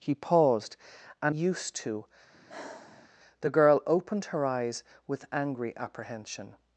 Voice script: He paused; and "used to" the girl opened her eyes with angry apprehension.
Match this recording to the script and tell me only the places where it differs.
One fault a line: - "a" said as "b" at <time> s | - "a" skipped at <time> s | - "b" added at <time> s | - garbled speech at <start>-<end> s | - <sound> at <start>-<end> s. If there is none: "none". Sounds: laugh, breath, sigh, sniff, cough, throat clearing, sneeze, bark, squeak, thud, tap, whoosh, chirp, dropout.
- sigh at 2.3-3.1 s